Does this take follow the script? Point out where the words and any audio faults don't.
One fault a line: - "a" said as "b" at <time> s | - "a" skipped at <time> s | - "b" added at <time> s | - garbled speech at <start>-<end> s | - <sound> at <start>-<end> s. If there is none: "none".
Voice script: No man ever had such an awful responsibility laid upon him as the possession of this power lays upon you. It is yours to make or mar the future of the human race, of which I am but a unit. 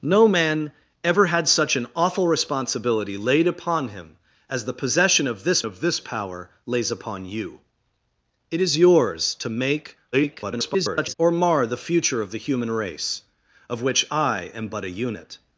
- "of this" added at 5.6 s
- garbled speech at 10.1-11.1 s